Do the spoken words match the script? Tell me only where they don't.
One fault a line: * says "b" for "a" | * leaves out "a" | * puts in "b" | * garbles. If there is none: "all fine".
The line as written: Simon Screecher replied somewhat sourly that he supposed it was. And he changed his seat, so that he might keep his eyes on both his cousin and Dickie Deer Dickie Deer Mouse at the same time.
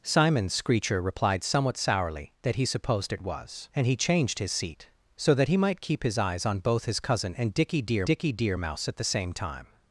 all fine